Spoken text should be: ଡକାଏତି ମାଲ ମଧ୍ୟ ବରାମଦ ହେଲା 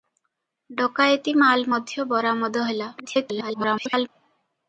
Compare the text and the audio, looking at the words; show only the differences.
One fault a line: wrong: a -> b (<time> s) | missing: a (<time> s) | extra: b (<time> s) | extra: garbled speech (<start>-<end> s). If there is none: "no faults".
extra: garbled speech (3.0-4.1 s)